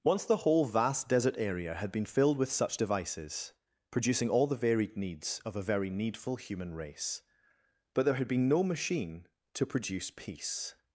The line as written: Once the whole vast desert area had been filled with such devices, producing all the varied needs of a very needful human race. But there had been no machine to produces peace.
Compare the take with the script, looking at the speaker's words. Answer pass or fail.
fail